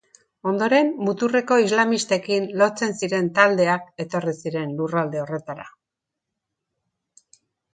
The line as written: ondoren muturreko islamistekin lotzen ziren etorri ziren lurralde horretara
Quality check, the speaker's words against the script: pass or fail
fail